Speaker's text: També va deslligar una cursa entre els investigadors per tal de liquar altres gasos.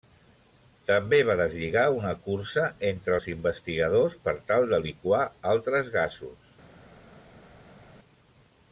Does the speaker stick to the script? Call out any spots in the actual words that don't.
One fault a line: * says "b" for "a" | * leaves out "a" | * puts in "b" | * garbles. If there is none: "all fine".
all fine